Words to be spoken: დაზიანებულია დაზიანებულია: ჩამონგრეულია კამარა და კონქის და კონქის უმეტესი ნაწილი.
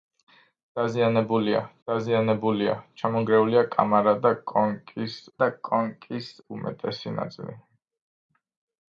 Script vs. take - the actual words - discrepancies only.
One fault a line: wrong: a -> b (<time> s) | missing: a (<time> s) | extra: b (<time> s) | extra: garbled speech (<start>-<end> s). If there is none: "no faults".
no faults